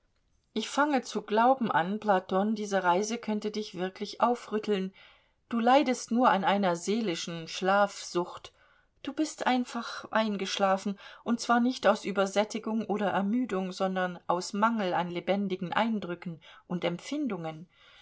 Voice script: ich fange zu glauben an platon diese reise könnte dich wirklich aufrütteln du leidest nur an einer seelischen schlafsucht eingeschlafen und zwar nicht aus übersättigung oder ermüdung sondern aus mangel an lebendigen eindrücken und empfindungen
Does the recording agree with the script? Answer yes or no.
no